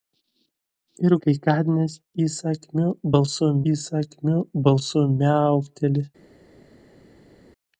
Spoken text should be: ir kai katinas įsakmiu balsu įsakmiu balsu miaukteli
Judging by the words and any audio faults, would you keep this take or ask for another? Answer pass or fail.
pass